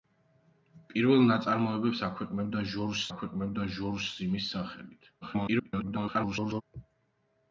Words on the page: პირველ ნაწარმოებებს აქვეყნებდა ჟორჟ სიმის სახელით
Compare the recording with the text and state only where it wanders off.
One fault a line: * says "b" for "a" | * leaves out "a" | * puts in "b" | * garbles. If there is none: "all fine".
* puts in "აქვეყნებდა ჟორჟ"
* garbles